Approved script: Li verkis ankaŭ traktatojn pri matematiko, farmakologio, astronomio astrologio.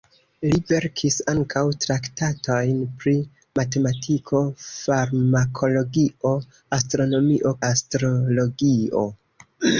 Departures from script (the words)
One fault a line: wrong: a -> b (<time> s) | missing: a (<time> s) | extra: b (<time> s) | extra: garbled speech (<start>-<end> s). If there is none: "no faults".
no faults